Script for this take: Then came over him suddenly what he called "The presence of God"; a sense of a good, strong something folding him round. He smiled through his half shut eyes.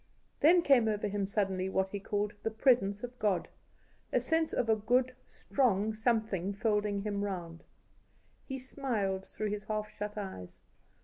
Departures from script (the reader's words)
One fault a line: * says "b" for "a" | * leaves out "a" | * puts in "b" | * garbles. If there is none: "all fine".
all fine